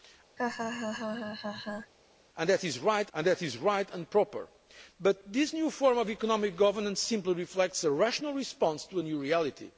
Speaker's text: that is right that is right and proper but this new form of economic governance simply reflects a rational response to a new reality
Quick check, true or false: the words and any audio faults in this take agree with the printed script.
false